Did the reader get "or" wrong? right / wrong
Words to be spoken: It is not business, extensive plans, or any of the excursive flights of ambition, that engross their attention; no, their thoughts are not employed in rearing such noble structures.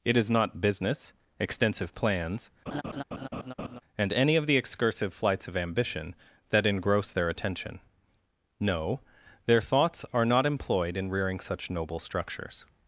wrong